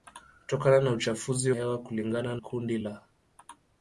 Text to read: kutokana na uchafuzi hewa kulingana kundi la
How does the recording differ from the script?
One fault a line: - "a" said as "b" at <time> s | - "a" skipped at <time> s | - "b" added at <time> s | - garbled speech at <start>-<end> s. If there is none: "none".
none